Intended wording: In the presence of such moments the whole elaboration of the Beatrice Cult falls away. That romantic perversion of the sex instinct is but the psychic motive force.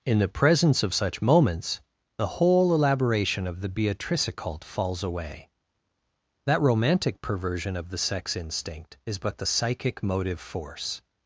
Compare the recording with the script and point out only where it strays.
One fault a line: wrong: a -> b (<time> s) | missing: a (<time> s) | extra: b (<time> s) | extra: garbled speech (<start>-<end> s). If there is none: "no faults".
no faults